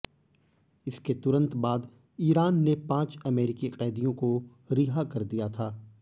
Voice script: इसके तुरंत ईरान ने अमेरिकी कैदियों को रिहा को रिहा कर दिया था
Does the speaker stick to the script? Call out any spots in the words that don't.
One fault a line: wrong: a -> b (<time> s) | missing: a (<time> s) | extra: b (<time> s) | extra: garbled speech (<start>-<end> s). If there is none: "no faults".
extra: बाद (1.6 s)
extra: पांच (2.9 s)
missing: को रिहा (5.0 s)